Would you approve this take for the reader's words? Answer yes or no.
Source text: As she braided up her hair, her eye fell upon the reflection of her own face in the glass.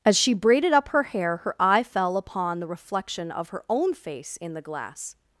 yes